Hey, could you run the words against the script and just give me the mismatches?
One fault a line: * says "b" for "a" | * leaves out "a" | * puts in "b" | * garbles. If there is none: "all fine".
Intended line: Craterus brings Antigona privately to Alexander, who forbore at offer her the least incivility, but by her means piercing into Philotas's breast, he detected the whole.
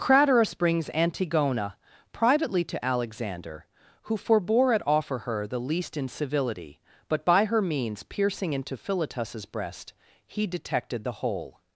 all fine